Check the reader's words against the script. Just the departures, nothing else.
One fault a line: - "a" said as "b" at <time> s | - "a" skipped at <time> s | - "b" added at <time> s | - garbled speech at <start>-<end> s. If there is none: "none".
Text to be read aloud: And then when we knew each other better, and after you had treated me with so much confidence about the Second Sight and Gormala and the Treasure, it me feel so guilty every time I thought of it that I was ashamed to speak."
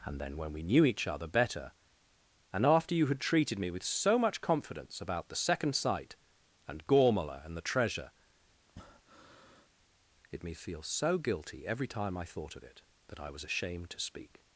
none